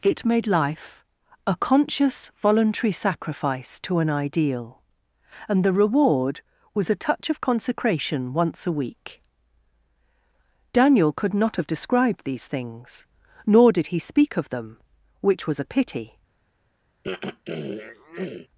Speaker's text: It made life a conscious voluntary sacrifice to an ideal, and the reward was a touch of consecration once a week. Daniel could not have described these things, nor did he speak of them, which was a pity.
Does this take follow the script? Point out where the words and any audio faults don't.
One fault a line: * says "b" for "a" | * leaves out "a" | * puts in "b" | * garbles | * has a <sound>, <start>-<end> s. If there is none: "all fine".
* has a throat clearing, 17.0-18.5 s